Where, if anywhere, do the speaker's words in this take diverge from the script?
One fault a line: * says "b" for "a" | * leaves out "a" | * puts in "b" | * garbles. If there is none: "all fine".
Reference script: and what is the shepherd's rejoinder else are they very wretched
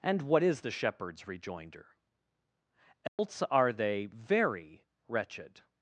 all fine